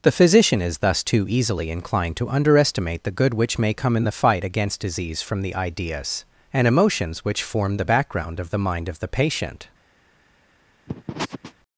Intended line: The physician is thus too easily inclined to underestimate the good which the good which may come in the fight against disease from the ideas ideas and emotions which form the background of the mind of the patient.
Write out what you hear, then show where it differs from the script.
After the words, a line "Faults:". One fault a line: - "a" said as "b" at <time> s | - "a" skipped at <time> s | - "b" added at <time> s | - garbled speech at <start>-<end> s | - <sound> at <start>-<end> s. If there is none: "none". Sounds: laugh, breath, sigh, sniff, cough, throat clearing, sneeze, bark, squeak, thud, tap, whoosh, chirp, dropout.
The physician is thus too easily inclined to underestimate the good which may come in the fight against disease from the ideas and emotions which form the background of the mind of the patient.
Faults:
- "the good which" skipped at 3.6 s
- "ideas" skipped at 6.2 s
- sniff at 10.9-11.5 s